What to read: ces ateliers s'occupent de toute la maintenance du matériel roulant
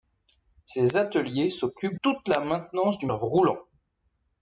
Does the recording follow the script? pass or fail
fail